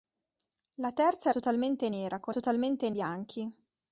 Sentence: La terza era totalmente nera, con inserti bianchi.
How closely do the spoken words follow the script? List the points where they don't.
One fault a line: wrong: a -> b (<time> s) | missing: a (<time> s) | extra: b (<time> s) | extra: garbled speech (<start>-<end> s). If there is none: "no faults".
missing: era (1.3 s)
wrong: inserti -> totalmente (2.3 s)